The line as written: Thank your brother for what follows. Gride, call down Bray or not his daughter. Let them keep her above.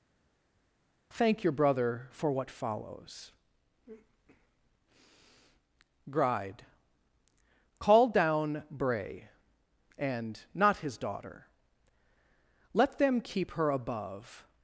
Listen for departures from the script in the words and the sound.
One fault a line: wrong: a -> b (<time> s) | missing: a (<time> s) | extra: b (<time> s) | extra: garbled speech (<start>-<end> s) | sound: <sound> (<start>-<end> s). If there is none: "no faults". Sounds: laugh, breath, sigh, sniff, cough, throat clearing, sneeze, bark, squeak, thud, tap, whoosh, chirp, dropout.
wrong: or -> and (10.0 s)